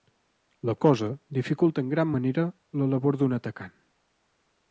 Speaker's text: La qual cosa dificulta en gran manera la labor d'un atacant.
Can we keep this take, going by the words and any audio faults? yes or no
no